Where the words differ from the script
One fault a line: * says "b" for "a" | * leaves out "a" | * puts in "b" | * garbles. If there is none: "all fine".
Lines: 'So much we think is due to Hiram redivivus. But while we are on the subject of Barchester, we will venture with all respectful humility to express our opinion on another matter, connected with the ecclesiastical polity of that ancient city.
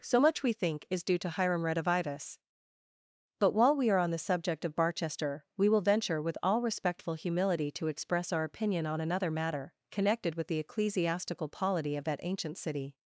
all fine